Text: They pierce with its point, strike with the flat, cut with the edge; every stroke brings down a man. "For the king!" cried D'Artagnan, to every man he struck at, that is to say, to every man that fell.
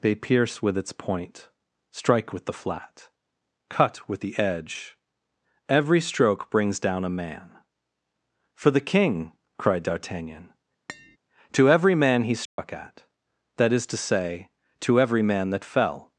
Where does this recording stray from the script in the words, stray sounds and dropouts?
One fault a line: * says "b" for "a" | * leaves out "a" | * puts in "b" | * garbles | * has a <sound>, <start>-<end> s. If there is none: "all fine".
* has a tap, 10.9-11.2 s
* has a dropout, 12.5-12.6 s